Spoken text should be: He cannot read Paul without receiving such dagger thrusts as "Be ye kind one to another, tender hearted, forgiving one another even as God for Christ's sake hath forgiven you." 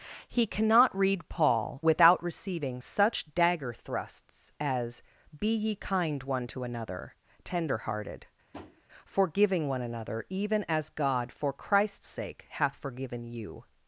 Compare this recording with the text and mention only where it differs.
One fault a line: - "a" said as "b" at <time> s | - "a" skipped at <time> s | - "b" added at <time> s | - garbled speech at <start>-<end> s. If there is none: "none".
none